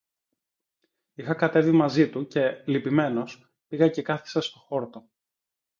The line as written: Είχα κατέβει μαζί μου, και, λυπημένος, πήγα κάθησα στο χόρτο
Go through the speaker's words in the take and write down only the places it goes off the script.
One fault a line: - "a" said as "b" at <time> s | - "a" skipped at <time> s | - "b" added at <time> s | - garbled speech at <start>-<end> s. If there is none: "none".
- "μου" said as "του" at 2.1 s
- "και" added at 3.9 s